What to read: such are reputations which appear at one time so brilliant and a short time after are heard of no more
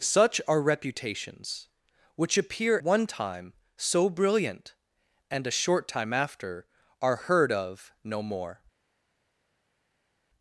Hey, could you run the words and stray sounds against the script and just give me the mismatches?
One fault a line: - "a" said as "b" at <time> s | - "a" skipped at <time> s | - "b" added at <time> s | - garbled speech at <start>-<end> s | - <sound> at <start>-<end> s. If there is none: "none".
- "at" skipped at 2.8 s